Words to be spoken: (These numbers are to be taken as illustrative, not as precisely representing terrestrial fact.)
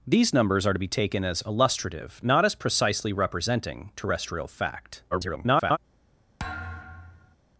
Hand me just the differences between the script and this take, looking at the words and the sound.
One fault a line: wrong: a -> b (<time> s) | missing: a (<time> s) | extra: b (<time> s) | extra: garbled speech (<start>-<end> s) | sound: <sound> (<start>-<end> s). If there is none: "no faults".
extra: garbled speech (5.1-5.8 s)
sound: thud (6.4-7.4 s)